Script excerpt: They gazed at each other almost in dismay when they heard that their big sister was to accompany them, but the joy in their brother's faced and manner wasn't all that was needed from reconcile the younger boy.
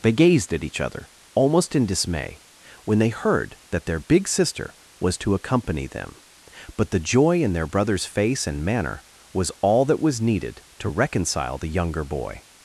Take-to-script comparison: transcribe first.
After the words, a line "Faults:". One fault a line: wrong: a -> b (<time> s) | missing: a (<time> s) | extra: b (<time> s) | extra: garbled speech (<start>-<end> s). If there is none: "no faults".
They gazed at each other almost in dismay when they heard that their big sister was to accompany them, but the joy in their brother's face and manner was all that was needed to reconcile the younger boy.
Faults:
wrong: faced -> face (8.1 s)
wrong: wasn't -> was (9.3 s)
wrong: from -> to (10.8 s)